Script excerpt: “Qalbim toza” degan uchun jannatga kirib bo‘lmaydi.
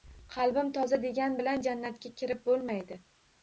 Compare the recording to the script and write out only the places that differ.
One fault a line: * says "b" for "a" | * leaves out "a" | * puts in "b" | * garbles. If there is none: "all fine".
* says "bilan" for "uchun"